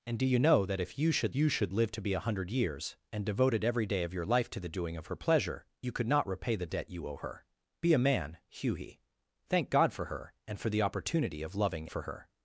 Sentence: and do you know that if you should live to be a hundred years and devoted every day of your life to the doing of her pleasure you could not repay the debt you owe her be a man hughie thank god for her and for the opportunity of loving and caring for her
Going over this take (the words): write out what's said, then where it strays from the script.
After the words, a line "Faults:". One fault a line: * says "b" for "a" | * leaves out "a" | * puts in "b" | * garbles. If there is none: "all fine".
and do you know that if you should you should live to be a hundred years and devoted every day of your life to the doing of her pleasure you could not repay the debt you owe her be a man hughie thank god for her and for the opportunity of loving for her
Faults:
* puts in "you should"
* leaves out "and caring"